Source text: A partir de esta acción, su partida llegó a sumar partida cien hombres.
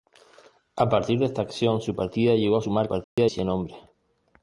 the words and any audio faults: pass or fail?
fail